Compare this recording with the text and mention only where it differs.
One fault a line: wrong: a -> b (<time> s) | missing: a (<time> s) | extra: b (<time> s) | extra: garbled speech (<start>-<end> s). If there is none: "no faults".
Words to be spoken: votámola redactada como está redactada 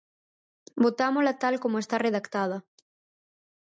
wrong: redactada -> tal (1.4 s)